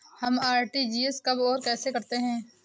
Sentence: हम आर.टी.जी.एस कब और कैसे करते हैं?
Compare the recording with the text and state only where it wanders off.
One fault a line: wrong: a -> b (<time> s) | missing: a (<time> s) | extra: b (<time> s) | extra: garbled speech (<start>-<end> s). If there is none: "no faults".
no faults